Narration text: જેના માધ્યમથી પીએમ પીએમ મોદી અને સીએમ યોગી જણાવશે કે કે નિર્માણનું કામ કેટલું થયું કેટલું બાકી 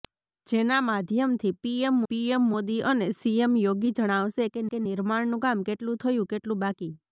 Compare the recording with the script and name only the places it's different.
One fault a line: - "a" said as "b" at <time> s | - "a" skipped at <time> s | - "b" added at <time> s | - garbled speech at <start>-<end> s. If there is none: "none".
none